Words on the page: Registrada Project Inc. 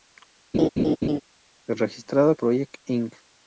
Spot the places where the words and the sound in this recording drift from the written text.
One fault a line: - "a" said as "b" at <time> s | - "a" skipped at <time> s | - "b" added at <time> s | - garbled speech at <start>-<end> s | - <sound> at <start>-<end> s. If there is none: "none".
- laugh at 0.5-1.2 s